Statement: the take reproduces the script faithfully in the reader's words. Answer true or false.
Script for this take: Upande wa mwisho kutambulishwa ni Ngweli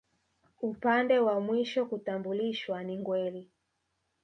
true